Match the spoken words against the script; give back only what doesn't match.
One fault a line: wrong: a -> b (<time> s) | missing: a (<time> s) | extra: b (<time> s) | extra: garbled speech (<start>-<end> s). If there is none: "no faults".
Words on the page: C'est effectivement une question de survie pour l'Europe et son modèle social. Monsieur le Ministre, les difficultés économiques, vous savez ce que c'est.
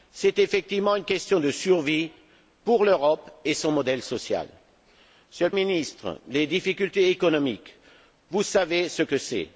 no faults